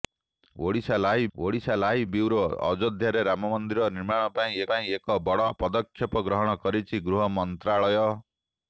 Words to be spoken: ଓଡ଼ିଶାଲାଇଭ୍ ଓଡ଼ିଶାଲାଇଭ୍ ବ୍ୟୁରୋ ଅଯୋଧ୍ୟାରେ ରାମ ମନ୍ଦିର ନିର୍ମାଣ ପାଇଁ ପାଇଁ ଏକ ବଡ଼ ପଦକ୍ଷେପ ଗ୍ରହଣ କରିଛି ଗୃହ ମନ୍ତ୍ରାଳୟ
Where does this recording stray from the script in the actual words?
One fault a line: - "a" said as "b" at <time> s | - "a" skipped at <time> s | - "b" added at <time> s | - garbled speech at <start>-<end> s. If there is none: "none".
none